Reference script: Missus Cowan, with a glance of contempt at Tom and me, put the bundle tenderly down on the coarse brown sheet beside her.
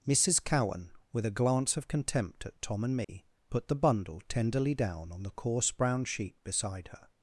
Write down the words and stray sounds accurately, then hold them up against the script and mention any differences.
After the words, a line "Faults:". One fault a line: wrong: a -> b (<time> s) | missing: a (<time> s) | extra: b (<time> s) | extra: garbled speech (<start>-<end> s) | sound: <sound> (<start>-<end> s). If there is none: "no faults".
Missus Cowan, with a glance of contempt at Tom and me, put the bundle tenderly down on the coarse brown sheet beside her.
Faults:
sound: dropout (3.0-3.1 s)